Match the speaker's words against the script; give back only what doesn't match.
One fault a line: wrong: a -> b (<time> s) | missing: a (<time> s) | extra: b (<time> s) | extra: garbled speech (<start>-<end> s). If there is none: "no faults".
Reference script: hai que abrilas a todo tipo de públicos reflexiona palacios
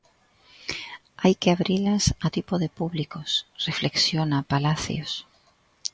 missing: todo (2.3 s)